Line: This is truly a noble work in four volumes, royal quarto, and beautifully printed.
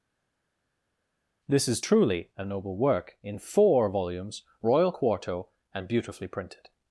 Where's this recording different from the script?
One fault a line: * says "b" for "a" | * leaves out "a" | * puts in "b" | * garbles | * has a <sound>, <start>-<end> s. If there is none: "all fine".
all fine